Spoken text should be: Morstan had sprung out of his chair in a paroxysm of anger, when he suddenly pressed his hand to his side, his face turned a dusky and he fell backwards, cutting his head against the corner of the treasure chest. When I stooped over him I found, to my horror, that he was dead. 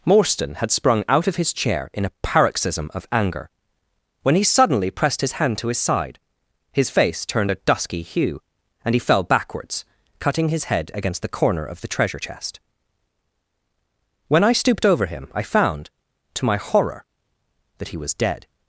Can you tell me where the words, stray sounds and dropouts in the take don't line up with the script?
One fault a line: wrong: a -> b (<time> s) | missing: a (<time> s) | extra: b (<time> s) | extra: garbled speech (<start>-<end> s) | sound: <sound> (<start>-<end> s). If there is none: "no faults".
extra: hue (8.0 s)